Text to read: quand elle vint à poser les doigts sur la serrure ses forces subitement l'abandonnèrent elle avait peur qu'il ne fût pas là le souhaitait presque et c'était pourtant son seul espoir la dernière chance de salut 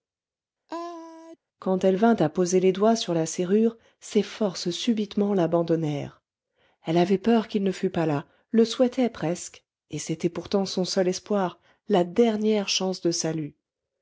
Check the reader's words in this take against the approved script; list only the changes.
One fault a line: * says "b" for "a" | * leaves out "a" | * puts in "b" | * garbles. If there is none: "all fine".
all fine